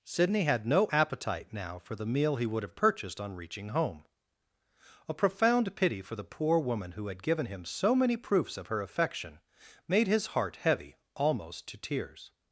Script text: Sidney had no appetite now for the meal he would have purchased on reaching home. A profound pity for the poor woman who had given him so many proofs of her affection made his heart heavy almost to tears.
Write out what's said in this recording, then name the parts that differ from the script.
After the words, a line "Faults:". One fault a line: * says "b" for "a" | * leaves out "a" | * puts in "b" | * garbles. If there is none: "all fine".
Sidney had no appetite now for the meal he would have purchased on reaching home. A profound pity for the poor woman who had given him so many proofs of her affection made his heart heavy almost to tears.
Faults:
all fine